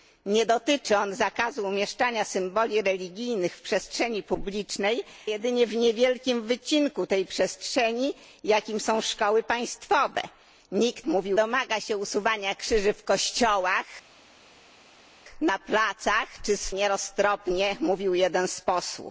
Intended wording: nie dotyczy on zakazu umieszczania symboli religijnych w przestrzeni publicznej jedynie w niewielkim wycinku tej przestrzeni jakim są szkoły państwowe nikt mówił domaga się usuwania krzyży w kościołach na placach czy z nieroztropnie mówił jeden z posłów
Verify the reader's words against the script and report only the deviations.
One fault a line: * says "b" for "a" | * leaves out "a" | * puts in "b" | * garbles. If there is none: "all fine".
all fine